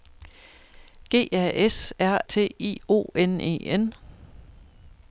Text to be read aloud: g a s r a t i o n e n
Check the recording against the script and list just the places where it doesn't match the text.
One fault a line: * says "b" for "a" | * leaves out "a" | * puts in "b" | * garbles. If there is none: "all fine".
* leaves out "a"